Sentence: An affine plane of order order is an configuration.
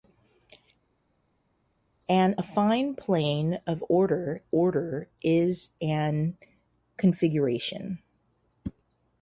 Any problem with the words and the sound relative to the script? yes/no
no